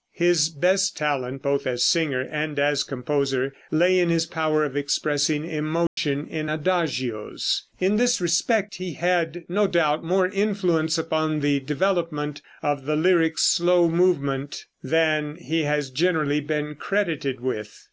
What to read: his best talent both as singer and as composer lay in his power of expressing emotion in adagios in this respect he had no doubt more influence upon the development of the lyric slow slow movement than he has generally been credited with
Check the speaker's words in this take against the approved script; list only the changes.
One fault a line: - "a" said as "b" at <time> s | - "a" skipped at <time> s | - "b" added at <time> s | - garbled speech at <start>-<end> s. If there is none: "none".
- "slow" skipped at 13.9 s